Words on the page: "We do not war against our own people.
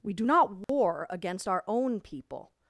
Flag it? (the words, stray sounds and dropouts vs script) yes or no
yes